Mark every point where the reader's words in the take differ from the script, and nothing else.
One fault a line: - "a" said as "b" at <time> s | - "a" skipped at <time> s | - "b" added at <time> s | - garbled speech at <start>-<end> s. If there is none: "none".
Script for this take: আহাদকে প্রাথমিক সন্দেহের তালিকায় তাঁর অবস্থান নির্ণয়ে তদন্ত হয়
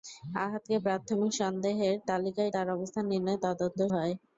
none